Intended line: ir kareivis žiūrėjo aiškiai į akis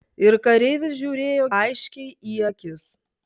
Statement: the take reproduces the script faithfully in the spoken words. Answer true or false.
true